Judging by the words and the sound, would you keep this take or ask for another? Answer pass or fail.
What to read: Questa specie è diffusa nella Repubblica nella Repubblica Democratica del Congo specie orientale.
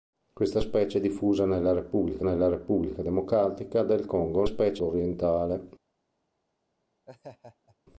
fail